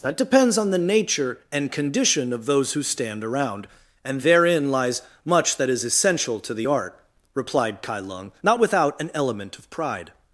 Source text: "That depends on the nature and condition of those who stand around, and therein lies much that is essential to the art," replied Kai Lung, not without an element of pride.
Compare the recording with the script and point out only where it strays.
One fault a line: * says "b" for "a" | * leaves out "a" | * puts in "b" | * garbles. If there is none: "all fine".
all fine